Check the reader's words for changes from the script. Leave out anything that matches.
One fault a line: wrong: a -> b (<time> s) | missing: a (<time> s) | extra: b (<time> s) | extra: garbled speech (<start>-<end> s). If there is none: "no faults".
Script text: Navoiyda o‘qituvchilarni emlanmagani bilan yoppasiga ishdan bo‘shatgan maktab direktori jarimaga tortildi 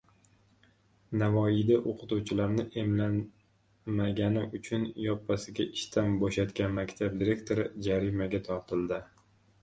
wrong: bilan -> uchun (4.6 s)